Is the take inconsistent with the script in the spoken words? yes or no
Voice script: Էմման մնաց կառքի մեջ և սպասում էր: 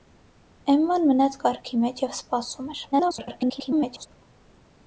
yes